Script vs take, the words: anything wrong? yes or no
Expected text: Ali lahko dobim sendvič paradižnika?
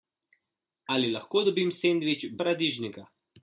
no